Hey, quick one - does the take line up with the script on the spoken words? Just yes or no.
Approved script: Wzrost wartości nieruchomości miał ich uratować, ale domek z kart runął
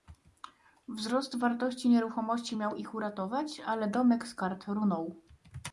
yes